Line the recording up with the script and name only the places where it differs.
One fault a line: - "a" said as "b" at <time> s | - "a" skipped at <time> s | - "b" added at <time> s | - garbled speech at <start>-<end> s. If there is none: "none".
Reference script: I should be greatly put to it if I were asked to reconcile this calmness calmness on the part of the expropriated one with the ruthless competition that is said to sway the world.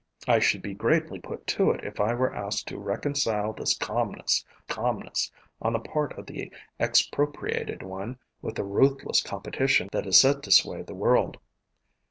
none